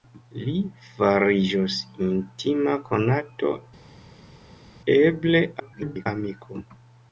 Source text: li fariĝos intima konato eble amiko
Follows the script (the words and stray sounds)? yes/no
no